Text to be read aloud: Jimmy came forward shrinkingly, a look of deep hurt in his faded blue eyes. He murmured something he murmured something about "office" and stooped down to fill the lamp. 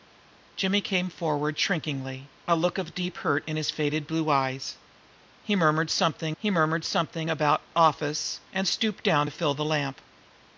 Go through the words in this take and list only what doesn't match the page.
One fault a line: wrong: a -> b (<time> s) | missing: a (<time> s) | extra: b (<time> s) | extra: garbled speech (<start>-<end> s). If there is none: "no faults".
no faults